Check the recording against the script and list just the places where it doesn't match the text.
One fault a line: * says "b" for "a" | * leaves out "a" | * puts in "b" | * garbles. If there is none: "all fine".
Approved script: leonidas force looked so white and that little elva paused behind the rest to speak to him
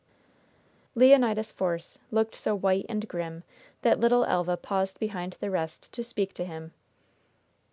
* puts in "grim"